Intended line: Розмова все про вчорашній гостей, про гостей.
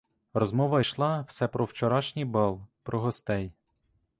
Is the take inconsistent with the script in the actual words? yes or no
yes